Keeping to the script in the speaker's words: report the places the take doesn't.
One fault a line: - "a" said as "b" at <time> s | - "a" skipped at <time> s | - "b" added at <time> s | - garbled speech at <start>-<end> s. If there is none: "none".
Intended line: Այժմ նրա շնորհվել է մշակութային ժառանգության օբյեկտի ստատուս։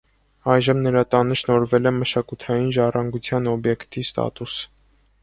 - "տանը" added at 1.1 s